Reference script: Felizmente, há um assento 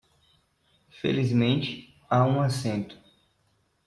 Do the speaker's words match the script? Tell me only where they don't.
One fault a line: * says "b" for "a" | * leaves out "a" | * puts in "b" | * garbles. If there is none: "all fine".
all fine